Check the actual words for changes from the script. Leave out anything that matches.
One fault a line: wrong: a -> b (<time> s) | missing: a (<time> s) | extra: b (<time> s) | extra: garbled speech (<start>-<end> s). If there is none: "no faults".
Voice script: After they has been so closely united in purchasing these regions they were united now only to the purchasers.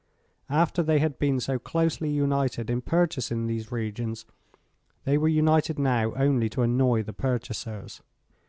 wrong: has -> had (1.0 s)
extra: annoy (6.6 s)